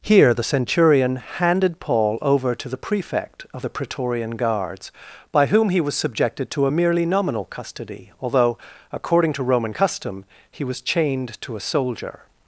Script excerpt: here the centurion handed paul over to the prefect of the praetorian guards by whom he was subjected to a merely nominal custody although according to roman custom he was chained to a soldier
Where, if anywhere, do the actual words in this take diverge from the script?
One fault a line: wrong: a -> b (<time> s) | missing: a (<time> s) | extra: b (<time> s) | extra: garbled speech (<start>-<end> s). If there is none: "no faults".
no faults